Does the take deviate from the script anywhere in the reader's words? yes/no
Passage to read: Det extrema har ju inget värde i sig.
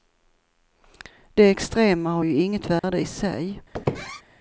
no